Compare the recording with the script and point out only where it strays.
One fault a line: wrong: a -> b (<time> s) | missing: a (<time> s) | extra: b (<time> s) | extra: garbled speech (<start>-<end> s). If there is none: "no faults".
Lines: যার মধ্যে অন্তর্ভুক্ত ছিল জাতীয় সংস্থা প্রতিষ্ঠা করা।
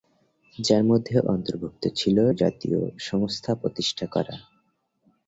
no faults